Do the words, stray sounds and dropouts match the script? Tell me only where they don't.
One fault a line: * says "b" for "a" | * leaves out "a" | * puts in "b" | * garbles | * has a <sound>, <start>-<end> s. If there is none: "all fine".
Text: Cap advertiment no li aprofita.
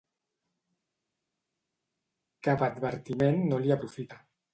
all fine